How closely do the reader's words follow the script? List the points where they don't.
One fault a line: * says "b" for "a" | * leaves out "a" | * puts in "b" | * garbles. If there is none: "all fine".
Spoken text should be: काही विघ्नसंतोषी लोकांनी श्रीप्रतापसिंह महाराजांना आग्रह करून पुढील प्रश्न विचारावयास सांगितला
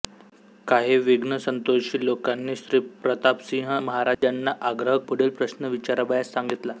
* leaves out "करून"